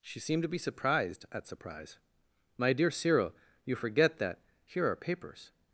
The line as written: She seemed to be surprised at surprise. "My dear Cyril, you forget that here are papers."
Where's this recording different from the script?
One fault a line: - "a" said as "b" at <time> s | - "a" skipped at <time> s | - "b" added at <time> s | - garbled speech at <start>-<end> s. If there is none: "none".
none